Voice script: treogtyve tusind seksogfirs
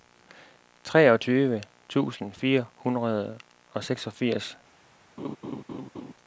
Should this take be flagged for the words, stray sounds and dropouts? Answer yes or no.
yes